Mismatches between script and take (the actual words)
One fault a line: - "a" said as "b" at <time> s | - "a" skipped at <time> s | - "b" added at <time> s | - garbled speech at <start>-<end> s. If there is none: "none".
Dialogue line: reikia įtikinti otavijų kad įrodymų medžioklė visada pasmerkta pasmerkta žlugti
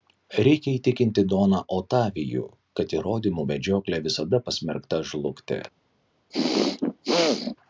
- "doną" added at 1.3 s
- "pasmerkta" skipped at 5.0 s